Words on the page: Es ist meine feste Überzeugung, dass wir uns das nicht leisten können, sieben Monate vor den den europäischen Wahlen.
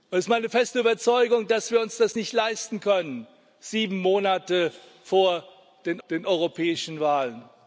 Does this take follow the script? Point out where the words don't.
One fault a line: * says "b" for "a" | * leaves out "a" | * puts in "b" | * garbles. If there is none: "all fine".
all fine